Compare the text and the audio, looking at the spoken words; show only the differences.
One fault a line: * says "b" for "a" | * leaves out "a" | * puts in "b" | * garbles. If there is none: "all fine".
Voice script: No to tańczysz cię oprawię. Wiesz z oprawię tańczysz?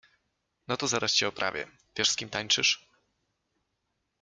* says "zaraz" for "tańczysz"
* says "kim" for "oprawię"